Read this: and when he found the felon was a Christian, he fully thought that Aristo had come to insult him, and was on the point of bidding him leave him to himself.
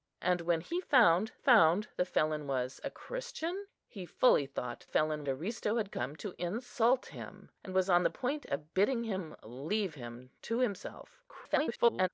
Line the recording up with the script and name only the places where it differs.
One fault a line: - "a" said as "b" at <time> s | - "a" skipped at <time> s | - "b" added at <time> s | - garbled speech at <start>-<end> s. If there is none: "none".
- "found" added at 1.3 s
- "that" said as "felon" at 4.9 s
- garbled speech at 11.3-12.1 s